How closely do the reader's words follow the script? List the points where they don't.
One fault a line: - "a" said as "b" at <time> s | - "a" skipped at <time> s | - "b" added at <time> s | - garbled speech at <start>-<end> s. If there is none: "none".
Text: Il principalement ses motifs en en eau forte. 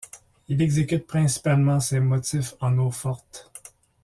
- "exécute" added at 0.6 s
- "en" skipped at 2.8 s